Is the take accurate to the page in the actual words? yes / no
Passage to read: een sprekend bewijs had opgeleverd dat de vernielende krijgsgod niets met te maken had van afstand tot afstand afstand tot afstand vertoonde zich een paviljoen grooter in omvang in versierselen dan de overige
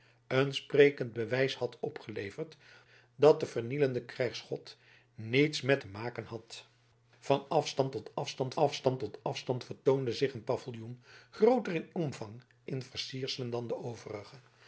yes